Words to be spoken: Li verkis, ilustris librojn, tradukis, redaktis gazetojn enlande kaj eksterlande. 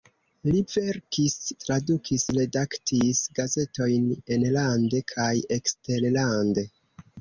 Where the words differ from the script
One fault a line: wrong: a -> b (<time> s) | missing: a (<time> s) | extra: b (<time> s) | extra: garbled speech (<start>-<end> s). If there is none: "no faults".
missing: ilustris librojn (1.4 s)